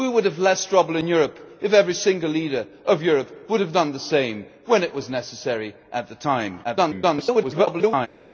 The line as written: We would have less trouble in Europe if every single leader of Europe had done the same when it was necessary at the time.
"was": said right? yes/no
yes